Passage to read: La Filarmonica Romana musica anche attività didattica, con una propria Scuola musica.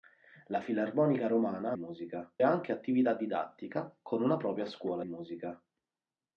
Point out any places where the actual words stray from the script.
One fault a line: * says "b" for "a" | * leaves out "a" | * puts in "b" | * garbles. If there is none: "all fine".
all fine